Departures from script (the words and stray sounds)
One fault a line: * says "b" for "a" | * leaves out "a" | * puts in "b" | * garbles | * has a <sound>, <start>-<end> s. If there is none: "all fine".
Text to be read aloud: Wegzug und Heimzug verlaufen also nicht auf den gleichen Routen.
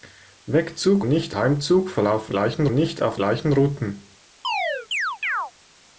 * says "nicht" for "und"
* says "gleichen" for "also"
* leaves out "den"
* has a chirp, 4.4-5.5 s